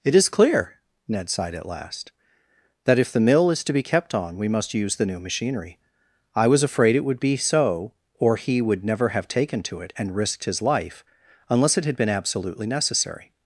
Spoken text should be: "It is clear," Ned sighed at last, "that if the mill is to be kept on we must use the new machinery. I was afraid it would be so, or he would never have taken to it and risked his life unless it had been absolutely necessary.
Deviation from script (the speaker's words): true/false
false